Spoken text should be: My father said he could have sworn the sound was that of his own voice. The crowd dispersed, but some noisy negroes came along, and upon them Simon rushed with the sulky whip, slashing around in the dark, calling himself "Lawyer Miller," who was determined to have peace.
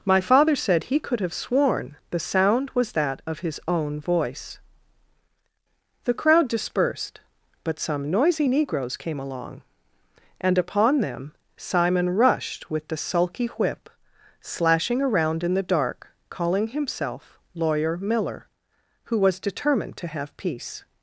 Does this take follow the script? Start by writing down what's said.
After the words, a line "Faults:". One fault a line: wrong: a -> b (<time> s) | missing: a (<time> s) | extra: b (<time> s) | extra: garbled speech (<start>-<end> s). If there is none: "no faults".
My father said he could have sworn the sound was that of his own voice. The crowd dispersed, but some noisy negroes came along, and upon them Simon rushed with the sulky whip, slashing around in the dark, calling himself "Lawyer Miller," who was determined to have peace.
Faults:
no faults